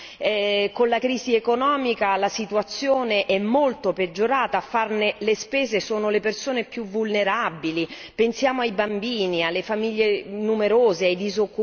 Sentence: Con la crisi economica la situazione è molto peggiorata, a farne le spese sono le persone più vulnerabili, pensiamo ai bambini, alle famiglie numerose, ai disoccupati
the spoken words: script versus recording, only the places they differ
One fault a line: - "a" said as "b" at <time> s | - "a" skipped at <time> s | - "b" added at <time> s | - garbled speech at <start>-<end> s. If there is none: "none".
none